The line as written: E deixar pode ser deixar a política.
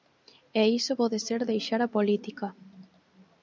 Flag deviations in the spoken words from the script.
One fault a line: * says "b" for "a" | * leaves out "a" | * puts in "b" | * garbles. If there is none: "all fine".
* says "iso" for "deixar"